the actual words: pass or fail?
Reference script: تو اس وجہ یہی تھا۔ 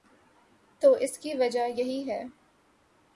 fail